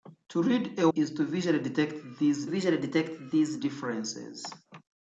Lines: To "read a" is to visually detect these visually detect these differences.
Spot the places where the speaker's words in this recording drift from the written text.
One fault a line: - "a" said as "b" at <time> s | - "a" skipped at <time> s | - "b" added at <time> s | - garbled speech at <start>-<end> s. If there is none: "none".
none